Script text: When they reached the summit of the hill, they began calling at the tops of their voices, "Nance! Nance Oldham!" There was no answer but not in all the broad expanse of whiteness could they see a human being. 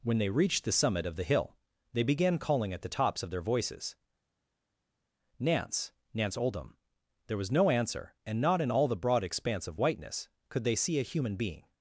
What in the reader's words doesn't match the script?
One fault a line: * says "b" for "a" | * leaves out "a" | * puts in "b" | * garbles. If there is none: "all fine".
* says "and" for "but"